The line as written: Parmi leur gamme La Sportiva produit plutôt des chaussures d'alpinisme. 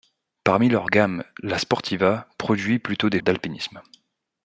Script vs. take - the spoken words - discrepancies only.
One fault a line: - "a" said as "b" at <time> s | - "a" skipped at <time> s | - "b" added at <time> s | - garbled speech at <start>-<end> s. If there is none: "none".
- "chaussures" skipped at 3.2 s